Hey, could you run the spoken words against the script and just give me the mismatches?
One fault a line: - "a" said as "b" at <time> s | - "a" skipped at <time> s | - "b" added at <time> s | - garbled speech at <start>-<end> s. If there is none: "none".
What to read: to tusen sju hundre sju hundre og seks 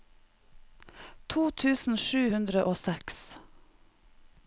- "sju hundre" skipped at 2.7 s